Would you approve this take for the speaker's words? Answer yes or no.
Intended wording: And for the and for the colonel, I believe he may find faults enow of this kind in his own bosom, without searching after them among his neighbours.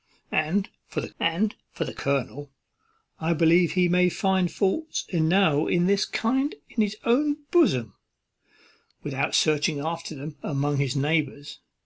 yes